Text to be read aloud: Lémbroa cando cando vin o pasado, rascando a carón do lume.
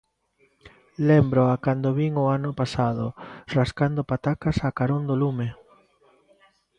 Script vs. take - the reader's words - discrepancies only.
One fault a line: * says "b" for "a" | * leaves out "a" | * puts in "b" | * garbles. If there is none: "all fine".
* leaves out "cando"
* puts in "ano"
* puts in "patacas"